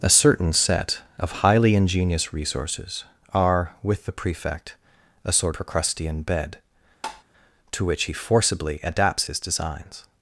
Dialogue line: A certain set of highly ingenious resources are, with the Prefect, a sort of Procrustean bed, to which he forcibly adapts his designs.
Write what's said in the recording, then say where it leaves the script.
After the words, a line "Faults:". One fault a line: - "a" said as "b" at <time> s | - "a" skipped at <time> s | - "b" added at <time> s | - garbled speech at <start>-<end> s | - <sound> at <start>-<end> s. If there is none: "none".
A certain set of highly ingenious resources are, with the Prefect, a sort Procrustean bed, to which he forcibly adapts his designs.
Faults:
- "of" skipped at 5.5 s
- tap at 7.0-7.2 s